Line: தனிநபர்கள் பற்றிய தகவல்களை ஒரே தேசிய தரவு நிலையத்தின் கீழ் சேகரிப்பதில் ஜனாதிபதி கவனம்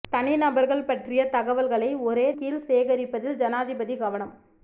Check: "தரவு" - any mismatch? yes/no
yes